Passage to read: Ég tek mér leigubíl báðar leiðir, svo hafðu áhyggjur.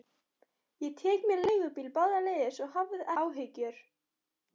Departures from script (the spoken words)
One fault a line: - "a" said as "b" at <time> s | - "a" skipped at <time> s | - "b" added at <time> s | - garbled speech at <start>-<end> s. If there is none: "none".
none